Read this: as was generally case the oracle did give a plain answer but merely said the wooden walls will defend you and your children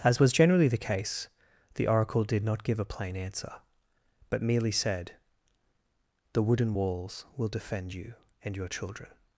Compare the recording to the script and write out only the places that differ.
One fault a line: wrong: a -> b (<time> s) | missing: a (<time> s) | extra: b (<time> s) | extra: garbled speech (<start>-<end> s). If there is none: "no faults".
extra: the (0.7 s)
extra: not (2.4 s)